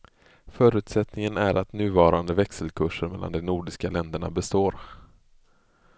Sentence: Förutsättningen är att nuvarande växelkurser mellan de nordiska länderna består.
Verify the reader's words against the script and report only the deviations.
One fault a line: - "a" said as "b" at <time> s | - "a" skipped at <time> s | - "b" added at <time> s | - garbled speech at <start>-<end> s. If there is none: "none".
none